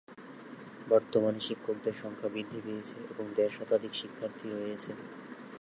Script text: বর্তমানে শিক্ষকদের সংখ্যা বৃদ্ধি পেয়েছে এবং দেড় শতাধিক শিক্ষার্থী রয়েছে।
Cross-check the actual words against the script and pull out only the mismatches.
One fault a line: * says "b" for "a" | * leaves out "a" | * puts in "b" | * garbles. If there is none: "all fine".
all fine